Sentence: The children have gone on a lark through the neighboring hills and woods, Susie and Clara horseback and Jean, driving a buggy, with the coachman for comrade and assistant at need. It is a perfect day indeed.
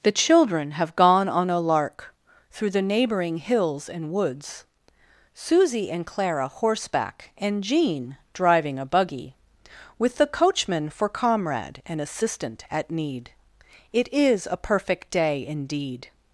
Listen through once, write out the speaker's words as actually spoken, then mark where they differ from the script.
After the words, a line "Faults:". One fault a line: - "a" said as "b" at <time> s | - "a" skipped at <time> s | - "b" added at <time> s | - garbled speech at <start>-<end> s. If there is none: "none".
The children have gone on a lark through the neighboring hills and woods, Susie and Clara horseback and Jean, driving a buggy, with the coachman for comrade and assistant at need. It is a perfect day indeed.
Faults:
none